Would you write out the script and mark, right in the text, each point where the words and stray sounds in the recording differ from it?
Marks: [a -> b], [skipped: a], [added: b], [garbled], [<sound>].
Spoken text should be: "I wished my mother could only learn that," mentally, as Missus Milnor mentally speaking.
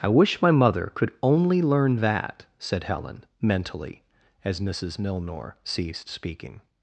"I [wished -> wish] my mother could only learn that," [added: said Helen] mentally, as Missus Milnor [mentally -> ceased] speaking.